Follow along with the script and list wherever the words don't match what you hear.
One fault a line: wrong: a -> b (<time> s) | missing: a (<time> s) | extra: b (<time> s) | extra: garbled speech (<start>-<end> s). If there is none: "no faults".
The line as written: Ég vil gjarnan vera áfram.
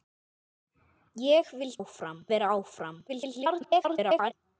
wrong: gjarnan -> áfram (1.8 s)
extra: garbled speech (3.1-4.3 s)